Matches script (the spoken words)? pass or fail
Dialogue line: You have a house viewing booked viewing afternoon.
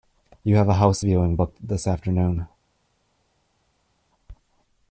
fail